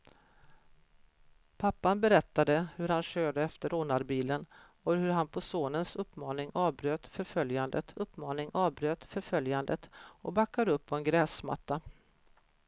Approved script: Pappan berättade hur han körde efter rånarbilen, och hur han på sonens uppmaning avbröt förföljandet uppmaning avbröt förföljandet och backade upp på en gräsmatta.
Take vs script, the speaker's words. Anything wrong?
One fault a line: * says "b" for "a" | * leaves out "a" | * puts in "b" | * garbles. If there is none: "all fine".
all fine